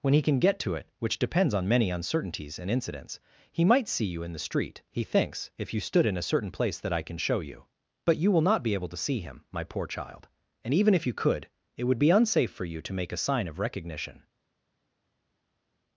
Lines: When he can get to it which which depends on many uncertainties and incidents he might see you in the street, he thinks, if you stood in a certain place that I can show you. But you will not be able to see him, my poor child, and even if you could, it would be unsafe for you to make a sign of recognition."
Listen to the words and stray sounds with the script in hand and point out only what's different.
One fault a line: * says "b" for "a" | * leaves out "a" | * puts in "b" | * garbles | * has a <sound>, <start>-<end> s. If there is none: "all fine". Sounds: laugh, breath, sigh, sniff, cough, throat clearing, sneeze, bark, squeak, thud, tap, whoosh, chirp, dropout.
* leaves out "which"